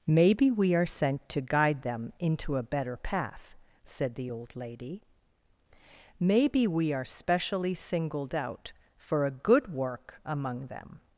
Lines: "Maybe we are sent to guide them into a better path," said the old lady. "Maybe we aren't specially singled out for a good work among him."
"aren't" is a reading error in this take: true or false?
true